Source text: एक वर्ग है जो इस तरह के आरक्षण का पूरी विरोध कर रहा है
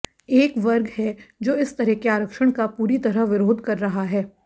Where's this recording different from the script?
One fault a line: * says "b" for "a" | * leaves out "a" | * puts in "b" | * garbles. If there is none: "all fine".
* puts in "तरह"